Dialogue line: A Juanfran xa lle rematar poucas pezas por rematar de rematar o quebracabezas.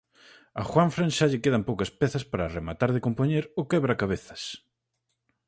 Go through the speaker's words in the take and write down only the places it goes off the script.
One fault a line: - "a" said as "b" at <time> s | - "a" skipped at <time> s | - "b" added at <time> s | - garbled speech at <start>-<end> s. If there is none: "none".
- "rematar" said as "quedan" at 1.4 s
- "por" said as "para" at 2.3 s
- "rematar" said as "compoñer" at 3.0 s